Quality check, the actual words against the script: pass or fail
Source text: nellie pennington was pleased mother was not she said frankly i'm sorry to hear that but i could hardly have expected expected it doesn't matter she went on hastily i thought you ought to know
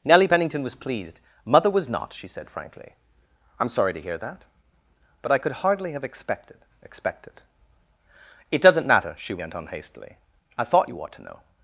pass